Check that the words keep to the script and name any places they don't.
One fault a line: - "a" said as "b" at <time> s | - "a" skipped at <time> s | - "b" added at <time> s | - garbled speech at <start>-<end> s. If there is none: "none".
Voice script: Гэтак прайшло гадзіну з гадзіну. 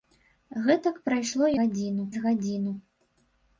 none